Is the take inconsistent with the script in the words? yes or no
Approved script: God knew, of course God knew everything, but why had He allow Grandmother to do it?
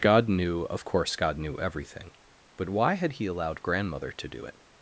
yes